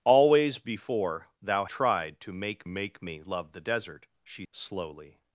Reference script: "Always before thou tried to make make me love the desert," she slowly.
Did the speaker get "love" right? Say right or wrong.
right